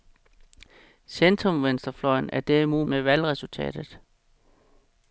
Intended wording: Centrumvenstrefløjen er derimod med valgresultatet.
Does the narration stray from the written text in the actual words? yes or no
no